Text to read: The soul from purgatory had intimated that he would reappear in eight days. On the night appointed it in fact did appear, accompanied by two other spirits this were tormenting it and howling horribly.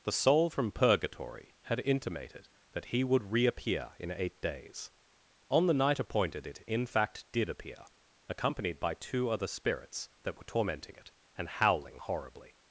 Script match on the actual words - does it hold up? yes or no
no